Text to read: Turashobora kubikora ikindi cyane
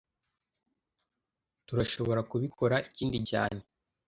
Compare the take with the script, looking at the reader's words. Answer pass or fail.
pass